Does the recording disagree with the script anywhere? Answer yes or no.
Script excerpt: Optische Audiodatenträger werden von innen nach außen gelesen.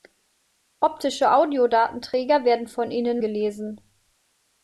yes